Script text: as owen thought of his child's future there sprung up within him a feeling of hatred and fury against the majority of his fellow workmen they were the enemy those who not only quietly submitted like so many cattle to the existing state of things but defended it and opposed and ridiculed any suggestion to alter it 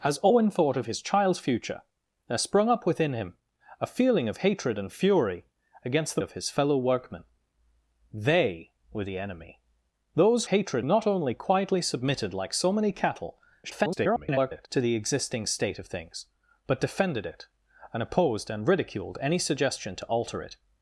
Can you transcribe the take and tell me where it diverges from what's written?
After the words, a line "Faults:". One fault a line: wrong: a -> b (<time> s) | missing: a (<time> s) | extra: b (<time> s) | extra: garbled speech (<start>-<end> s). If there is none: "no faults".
as owen thought of his child's future there sprung up within him a feeling of hatred and fury against the of his fellow workmen they were the enemy those hatred not only quietly submitted like so many cattle [garbled] to the existing state of things but defended it and opposed and ridiculed any suggestion to alter it
Faults:
missing: majority (6.2 s)
wrong: who -> hatred (10.5 s)
extra: garbled speech (13.6-14.7 s)